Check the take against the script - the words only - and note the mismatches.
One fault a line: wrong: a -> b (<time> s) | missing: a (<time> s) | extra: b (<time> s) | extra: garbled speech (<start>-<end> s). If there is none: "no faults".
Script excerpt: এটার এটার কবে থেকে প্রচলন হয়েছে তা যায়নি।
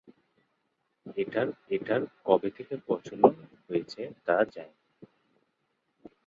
no faults